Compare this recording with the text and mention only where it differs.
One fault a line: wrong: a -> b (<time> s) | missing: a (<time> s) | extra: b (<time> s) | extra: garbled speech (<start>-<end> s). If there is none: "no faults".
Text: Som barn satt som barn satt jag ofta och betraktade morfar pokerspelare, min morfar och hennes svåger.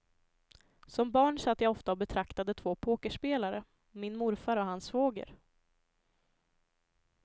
missing: som barn satt (1.6 s)
wrong: morfar -> två (2.5 s)
wrong: hennes -> hans (4.7 s)